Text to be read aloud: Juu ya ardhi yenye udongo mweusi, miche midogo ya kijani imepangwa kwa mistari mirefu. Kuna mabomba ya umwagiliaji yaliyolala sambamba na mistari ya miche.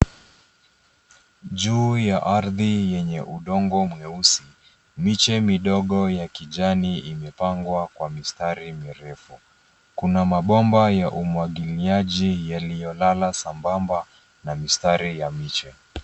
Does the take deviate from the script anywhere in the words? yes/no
no